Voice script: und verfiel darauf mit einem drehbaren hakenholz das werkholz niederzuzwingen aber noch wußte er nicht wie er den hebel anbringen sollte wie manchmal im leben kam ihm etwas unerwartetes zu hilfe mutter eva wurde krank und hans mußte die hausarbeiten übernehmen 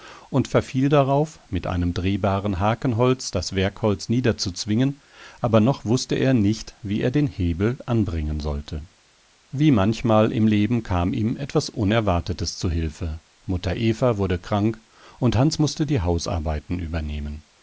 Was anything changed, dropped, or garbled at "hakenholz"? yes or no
no